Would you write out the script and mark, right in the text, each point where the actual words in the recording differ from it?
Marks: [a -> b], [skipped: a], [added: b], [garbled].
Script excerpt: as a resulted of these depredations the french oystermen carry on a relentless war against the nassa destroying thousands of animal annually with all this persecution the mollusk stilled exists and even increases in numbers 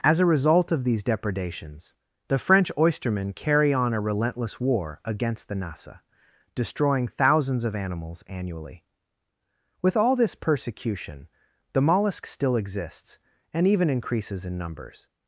as a [resulted -> result] of these depredations the french oystermen carry on a relentless war against the nassa destroying thousands of [animal -> animals] annually with all this persecution the mollusk [stilled -> still] exists and even increases in numbers